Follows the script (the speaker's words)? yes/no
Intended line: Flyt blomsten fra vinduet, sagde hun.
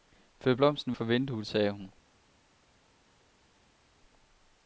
yes